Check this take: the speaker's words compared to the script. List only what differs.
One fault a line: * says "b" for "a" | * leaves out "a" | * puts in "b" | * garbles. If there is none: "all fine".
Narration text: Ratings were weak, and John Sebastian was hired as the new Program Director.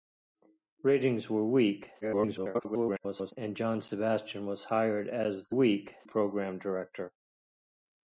* garbles
* says "weak" for "new"